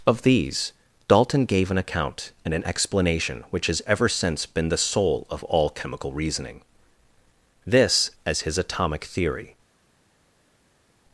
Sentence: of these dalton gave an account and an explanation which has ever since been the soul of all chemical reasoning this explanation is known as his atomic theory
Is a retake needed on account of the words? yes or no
yes